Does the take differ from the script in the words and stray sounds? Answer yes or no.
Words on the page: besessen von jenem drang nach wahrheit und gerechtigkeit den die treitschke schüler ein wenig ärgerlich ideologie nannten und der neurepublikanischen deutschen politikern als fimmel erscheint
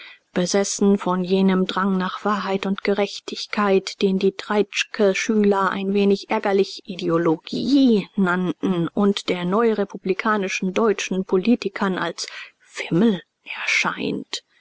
no